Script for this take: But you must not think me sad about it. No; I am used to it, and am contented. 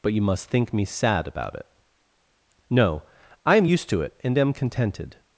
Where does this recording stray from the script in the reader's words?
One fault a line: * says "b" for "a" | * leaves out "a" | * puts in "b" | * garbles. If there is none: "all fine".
* leaves out "not"